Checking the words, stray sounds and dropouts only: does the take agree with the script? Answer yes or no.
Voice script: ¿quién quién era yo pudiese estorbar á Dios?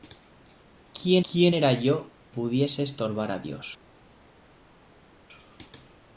yes